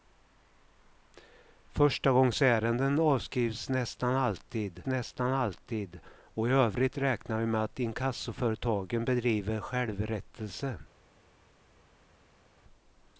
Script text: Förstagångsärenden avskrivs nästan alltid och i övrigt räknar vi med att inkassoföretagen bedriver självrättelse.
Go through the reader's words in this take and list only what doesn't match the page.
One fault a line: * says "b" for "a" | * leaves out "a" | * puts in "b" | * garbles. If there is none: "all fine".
* puts in "nästan alltid"